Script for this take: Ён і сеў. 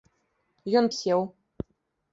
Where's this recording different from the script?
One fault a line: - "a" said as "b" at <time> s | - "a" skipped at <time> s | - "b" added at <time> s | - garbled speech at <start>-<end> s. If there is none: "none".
none